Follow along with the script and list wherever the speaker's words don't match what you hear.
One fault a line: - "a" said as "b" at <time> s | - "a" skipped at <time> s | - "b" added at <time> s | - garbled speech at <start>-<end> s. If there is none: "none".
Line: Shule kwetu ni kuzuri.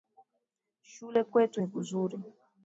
none